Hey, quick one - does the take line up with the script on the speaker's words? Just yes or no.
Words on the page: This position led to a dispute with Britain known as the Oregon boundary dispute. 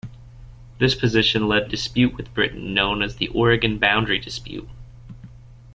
no